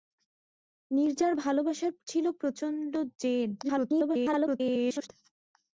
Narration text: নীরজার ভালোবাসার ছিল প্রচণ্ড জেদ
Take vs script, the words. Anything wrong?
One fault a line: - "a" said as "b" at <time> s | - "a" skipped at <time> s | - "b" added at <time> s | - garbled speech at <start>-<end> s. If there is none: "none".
- garbled speech at 3.6-5.1 s